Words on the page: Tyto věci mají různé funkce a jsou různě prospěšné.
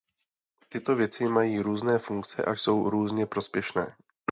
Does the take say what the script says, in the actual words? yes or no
yes